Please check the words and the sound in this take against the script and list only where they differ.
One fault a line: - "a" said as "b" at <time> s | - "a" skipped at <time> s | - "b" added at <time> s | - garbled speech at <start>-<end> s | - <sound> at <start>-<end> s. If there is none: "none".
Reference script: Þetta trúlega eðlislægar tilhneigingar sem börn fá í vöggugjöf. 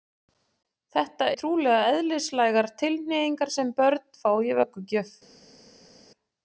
none